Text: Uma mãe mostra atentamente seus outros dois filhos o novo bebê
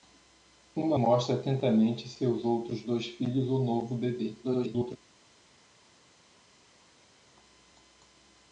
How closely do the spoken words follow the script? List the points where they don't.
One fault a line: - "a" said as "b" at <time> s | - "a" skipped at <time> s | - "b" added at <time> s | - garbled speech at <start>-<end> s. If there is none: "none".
- "mãe" skipped at 1.0 s
- garbled speech at 4.4-5.0 s